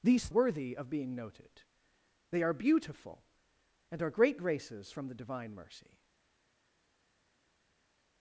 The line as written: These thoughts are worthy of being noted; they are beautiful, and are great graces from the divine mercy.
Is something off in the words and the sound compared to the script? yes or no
yes